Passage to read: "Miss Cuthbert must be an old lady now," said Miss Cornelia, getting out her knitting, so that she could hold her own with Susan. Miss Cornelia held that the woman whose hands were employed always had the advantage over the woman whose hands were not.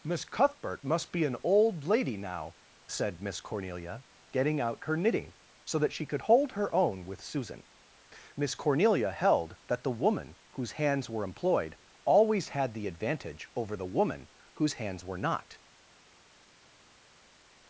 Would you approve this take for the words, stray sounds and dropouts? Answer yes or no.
yes